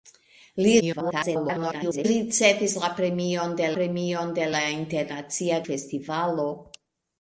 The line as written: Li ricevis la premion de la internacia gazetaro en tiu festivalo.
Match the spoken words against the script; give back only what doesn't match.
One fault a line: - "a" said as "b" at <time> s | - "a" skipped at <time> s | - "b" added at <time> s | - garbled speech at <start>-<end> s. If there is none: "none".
- garbled speech at 0.8-2.1 s
- "premion de" added at 3.8 s
- "gazetaro en tiu" skipped at 5.6 s